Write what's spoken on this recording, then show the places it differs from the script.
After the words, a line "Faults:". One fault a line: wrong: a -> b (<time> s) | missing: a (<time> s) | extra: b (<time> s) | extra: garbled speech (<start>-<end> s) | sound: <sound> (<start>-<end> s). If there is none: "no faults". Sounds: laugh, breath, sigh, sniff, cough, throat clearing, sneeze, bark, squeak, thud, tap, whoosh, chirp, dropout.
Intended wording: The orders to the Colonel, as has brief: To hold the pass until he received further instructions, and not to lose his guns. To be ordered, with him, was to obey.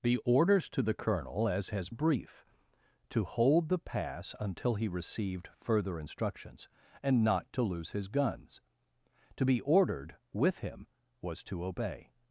The orders to the Colonel, as has brief: To hold the pass until he received further instructions, and not to lose his guns. To be ordered, with him, was to obey.
Faults:
no faults